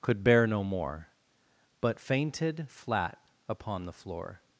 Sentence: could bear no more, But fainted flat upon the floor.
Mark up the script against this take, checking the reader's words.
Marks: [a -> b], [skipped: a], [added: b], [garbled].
could bear no more, But fainted flat upon the floor.